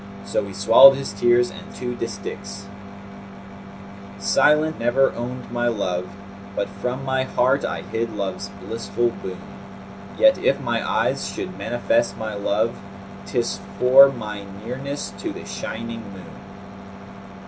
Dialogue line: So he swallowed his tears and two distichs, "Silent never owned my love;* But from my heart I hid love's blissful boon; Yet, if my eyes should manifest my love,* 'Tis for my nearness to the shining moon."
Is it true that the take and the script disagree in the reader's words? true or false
false